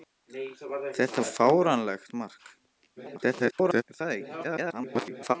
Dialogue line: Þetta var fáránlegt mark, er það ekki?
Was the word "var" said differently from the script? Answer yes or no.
yes